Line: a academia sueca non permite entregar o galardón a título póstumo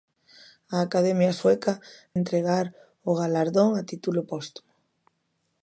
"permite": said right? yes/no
no